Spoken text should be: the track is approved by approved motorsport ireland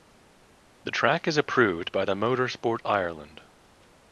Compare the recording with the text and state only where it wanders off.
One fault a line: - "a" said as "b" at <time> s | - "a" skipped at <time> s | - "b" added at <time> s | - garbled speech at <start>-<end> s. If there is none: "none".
- "approved" said as "the" at 2.0 s